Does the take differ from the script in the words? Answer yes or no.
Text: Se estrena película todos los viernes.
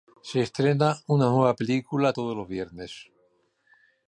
yes